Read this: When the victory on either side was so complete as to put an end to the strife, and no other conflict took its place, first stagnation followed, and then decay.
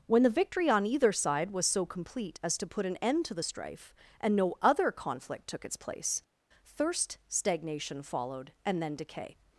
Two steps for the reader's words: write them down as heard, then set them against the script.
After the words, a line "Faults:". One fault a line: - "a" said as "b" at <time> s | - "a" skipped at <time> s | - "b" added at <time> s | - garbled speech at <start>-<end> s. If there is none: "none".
When the victory on either side was so complete as to put an end to the strife, and no other conflict took its place, thirst stagnation followed, and then decay.
Faults:
- "first" said as "thirst" at 6.6 s